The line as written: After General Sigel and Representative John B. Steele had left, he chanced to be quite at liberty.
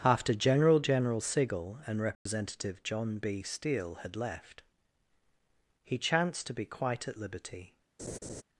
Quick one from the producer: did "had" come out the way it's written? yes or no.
yes